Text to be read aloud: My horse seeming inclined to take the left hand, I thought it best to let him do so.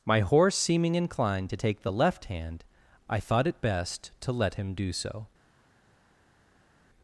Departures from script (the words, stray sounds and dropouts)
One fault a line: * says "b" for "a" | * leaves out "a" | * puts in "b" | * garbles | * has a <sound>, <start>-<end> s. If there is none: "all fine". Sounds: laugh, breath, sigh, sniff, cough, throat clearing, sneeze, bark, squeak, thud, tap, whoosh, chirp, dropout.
all fine